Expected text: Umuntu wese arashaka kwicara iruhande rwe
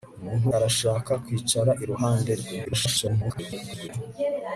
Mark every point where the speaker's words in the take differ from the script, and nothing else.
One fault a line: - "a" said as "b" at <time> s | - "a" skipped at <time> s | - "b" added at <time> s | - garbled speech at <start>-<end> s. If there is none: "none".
- "wese" skipped at 0.5 s
- garbled speech at 2.6-3.9 s